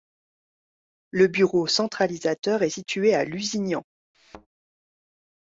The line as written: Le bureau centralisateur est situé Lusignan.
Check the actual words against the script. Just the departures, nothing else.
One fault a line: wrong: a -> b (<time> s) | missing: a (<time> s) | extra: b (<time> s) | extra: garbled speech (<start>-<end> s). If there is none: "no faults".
extra: à (3.1 s)